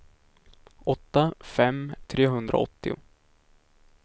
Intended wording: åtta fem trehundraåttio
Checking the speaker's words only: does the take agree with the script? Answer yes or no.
yes